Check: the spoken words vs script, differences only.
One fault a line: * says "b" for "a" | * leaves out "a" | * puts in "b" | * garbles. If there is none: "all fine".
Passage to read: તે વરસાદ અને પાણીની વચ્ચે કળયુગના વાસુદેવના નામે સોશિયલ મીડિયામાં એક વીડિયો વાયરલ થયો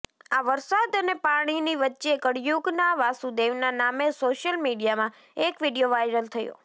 * says "આ" for "તે"